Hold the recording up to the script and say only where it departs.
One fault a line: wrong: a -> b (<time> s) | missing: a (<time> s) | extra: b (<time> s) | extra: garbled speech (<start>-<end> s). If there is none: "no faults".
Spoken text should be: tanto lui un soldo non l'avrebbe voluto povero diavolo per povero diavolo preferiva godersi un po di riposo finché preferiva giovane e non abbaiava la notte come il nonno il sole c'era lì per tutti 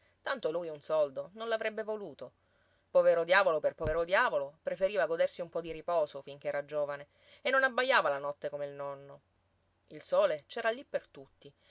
wrong: preferiva -> era (6.5 s)